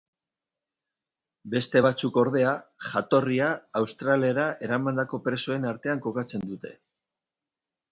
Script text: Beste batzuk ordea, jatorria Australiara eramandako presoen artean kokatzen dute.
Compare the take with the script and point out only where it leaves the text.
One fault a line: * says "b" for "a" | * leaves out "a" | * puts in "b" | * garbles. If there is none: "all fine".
all fine